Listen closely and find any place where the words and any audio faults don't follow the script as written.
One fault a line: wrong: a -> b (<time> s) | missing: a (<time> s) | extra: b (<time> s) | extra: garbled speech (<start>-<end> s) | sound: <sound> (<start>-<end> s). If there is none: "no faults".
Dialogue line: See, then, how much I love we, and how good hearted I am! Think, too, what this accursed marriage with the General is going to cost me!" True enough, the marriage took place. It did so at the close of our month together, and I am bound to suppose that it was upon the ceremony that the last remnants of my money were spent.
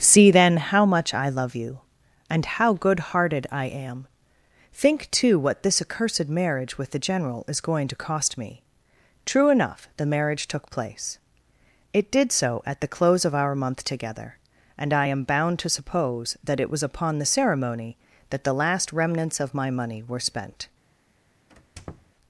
wrong: we -> you (1.5 s)
sound: squeak (21.5-22.1 s)